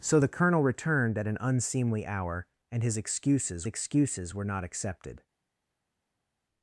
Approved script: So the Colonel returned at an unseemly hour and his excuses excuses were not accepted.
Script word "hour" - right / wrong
right